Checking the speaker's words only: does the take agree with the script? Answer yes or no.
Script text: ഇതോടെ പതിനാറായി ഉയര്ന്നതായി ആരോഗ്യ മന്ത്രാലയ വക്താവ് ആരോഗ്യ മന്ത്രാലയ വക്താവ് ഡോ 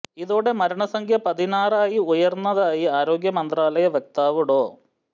no